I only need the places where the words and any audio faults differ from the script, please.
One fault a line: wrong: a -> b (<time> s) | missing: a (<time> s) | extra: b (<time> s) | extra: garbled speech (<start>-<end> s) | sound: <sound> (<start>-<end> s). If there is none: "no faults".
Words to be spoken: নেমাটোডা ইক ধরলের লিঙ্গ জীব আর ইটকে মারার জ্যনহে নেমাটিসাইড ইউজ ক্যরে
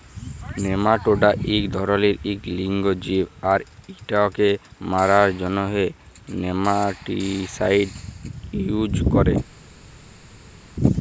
extra: ইক (2.2 s)